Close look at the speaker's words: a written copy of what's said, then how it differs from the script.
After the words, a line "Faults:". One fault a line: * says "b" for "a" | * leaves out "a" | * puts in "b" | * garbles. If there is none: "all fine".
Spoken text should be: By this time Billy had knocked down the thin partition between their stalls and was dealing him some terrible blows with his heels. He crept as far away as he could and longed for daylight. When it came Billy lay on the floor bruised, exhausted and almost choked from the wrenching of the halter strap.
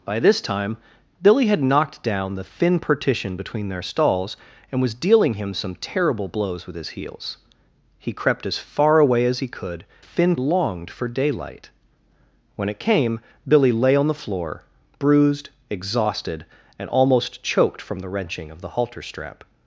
By this time Billy had knocked down the thin partition between their stalls and was dealing him some terrible blows with his heels. He crept as far away as he could thin longed for daylight. When it came Billy lay on the floor bruised, exhausted and almost choked from the wrenching of the halter strap.
Faults:
* says "thin" for "and"